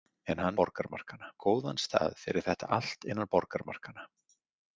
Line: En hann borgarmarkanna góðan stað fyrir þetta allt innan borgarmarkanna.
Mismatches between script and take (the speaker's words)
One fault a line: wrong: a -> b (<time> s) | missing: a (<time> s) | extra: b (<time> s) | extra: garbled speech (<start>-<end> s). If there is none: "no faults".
no faults